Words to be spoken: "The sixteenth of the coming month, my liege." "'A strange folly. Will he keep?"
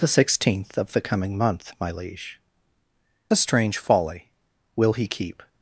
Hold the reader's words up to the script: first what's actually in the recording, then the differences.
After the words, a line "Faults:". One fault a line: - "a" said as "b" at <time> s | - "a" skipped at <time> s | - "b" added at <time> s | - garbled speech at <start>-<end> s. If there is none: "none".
"The sixteenth of the coming month, my liege." "'A strange folly. Will he keep?"
Faults:
none